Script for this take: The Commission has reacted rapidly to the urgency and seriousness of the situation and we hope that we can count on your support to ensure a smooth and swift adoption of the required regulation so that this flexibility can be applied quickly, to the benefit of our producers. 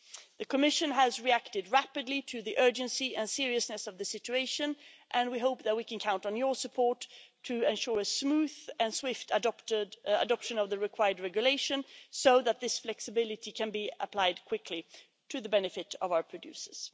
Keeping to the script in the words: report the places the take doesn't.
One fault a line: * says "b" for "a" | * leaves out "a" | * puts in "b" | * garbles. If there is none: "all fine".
all fine